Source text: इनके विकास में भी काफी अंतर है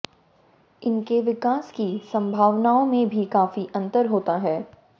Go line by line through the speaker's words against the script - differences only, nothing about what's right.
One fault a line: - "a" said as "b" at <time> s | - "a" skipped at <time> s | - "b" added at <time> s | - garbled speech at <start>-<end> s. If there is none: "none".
- "की संभावनाओं" added at 1.7 s
- "होता" added at 4.0 s